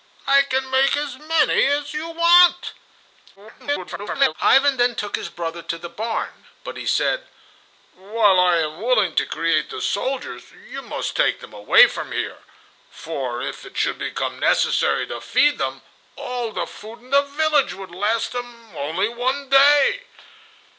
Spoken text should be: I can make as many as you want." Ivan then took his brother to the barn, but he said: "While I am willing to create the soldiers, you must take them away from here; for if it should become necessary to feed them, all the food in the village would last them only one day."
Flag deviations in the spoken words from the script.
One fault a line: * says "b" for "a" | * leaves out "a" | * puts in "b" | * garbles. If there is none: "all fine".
* garbles